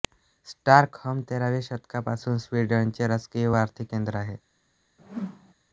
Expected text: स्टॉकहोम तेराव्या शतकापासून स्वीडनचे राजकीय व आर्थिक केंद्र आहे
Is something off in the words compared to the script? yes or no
no